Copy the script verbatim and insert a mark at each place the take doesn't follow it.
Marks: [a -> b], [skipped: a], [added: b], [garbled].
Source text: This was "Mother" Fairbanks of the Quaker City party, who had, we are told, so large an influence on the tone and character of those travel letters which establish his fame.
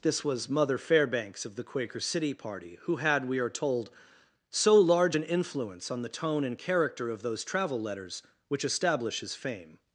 This was "Mother" Fairbanks of the Quaker City party, who had, we are told, so large an influence on the tone and character of those travel letters which establish his fame.